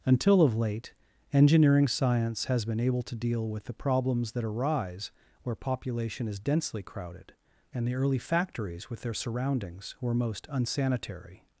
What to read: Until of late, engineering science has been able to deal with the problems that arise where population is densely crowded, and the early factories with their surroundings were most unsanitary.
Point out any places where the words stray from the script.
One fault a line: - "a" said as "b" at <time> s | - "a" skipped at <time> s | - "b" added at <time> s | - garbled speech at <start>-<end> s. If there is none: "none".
none